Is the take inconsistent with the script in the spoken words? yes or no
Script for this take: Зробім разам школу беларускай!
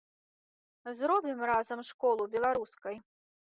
no